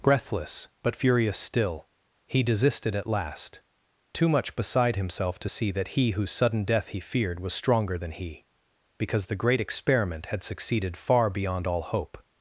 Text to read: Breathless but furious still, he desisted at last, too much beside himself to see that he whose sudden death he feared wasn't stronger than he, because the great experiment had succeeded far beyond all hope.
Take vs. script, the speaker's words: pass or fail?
fail